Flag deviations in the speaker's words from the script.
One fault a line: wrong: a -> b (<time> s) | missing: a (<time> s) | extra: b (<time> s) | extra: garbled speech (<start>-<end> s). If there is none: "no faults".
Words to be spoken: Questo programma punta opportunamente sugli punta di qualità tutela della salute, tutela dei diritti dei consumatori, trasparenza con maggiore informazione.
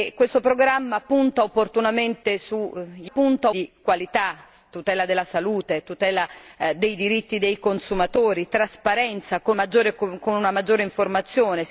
no faults